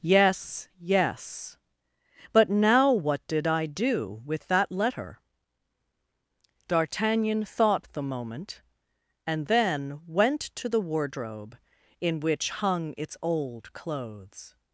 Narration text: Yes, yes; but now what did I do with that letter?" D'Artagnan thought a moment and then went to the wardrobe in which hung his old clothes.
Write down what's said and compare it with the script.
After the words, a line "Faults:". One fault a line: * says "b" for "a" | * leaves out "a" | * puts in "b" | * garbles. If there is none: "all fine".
Yes, yes; but now what did I do with that letter?" D'Artagnan thought the moment and then went to the wardrobe in which hung its old clothes.
Faults:
* says "the" for "a"
* says "its" for "his"